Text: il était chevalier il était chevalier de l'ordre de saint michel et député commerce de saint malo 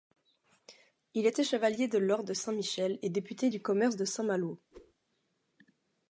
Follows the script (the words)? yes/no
no